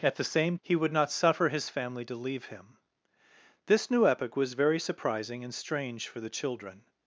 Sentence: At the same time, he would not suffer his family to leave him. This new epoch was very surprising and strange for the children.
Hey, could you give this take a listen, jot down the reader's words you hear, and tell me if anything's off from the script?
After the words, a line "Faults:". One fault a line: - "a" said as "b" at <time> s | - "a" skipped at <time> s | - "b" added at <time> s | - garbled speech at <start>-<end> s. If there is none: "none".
At the same he would not suffer his family to leave him. This new epoch was very surprising and strange for the children.
Faults:
- "time" skipped at 0.6 s